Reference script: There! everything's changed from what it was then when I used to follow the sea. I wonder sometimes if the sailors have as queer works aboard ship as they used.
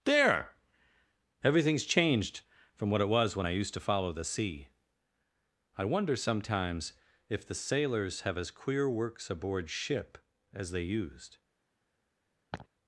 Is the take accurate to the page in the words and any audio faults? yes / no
no